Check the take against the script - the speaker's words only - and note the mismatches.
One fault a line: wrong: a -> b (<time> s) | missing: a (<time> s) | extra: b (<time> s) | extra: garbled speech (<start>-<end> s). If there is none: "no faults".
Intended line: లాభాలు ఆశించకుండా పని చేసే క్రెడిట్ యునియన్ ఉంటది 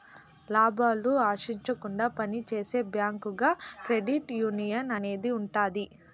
extra: బ్యాంకుగా (2.9 s)
extra: అనేది (5.0 s)